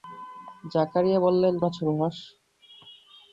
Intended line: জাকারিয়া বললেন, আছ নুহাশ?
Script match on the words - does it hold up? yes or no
yes